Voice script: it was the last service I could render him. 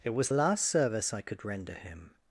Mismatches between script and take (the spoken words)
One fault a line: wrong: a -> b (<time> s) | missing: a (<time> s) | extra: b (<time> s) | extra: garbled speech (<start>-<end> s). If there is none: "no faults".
missing: the (0.3 s)